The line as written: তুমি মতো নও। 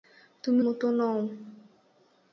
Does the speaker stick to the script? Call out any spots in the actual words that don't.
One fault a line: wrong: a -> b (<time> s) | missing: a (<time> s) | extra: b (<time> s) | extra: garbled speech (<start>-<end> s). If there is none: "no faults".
no faults